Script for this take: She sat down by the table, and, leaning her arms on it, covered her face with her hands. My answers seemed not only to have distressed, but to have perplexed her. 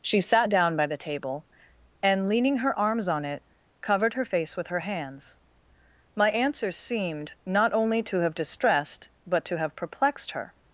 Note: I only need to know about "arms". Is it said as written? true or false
true